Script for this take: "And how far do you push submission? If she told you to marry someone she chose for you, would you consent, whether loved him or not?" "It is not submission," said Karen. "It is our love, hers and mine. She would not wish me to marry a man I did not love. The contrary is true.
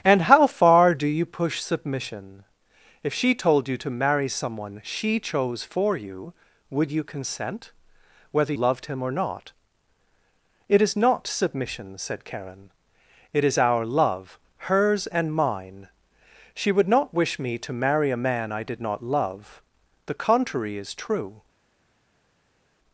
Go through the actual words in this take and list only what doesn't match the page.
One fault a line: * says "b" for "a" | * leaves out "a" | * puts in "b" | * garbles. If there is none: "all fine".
all fine